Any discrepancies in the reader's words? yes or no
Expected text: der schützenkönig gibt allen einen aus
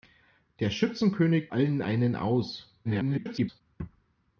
yes